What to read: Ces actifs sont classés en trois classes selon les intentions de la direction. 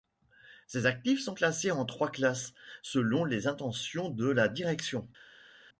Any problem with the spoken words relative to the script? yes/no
no